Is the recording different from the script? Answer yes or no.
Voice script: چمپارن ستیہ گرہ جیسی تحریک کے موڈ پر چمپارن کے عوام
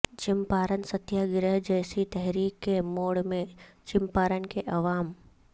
yes